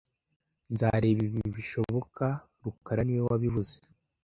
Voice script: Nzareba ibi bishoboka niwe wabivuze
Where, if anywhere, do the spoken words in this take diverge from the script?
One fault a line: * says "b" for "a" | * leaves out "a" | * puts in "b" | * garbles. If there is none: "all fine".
* puts in "rukara"